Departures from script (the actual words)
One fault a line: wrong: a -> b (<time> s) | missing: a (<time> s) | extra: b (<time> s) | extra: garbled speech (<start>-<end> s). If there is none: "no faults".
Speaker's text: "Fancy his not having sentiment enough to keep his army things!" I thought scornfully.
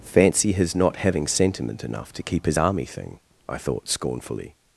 wrong: things -> thing (2.8 s)